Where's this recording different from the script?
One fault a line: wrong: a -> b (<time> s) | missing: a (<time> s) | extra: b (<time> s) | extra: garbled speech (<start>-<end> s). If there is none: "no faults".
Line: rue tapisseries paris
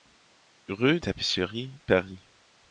no faults